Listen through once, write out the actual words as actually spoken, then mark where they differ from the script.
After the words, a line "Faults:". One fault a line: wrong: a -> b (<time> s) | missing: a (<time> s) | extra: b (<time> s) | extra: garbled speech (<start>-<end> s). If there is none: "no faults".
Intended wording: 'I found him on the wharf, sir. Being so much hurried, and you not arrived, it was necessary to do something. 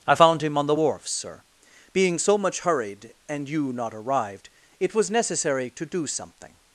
'I found him on the wharf, sir. Being so much hurried, and you not arrived, it was necessary to do something.
Faults:
no faults